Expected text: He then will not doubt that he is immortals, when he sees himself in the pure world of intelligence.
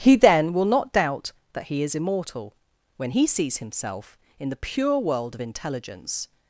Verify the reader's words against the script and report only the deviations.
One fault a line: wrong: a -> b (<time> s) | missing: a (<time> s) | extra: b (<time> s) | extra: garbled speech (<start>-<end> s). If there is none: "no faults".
wrong: immortals -> immortal (1.9 s)